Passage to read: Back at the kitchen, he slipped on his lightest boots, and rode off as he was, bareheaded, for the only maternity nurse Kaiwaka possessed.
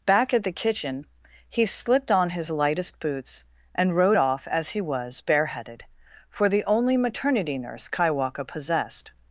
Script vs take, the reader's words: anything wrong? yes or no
no